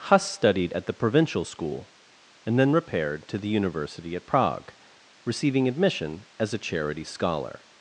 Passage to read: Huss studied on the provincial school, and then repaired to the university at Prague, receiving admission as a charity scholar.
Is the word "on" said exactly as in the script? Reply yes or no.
no